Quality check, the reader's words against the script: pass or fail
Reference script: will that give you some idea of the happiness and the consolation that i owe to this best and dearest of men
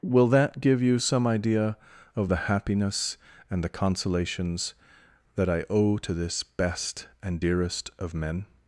fail